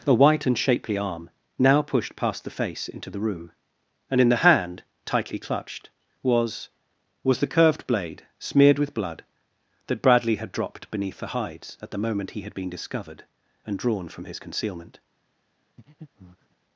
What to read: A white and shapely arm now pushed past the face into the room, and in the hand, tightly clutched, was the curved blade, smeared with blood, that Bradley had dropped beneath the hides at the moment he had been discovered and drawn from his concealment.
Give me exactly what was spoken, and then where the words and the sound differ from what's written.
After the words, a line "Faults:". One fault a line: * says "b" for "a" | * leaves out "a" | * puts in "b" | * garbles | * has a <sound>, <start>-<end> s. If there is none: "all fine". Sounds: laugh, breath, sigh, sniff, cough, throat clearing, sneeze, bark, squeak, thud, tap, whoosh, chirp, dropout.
A white and shapely arm now pushed past the face into the room, and in the hand, tightly clutched, was was the curved blade, smeared with blood, that Bradley had dropped beneath the hides at the moment he had been discovered and drawn from his concealment.
Faults:
* puts in "was"
* has a breath, 15.8-16.6 s